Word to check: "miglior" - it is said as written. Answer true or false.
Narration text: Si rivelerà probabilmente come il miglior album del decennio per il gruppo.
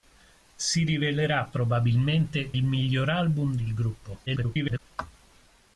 true